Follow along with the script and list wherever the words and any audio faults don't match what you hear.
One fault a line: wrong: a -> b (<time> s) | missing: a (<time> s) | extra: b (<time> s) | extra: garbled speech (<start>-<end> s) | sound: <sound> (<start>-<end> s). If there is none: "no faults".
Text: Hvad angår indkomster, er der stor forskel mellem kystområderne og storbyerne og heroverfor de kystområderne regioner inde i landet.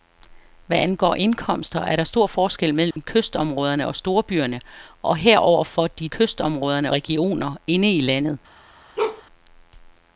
sound: dropout (2.9-3.0 s)
sound: bark (9.0-9.2 s)